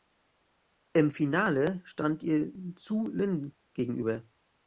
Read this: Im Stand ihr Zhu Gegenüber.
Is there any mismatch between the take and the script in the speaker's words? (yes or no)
yes